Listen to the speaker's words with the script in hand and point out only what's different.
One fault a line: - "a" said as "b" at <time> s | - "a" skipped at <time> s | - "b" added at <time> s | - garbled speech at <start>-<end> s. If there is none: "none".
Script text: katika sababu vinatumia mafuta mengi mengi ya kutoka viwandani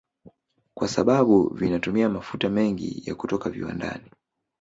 - "katika" said as "kwa" at 0.7 s
- "mengi" skipped at 3.0 s